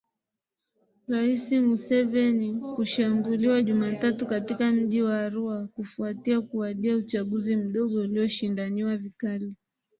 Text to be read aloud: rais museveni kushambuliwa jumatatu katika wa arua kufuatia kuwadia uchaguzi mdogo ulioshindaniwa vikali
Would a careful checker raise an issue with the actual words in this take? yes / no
yes